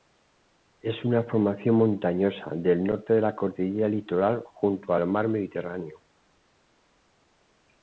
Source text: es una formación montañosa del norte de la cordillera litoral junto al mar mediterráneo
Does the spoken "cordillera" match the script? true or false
true